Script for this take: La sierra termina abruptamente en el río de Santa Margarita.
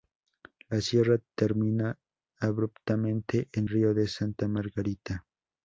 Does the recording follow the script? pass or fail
fail